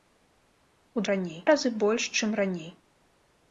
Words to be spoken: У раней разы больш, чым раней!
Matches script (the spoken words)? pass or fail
pass